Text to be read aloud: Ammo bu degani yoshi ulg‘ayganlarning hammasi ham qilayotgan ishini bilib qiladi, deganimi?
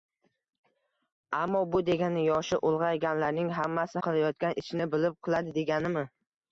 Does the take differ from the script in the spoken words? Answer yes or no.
yes